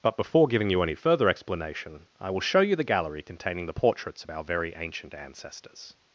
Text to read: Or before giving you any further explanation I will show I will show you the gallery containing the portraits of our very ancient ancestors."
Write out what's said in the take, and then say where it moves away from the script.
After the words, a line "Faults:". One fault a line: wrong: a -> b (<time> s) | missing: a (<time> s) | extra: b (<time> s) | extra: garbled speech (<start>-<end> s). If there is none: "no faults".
But before giving you any further explanation I will show you the gallery containing the portraits of our very ancient ancestors."
Faults:
wrong: Or -> But (0.0 s)
missing: I will show (2.6 s)